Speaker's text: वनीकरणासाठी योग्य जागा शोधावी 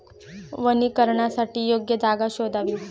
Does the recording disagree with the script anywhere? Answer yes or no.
no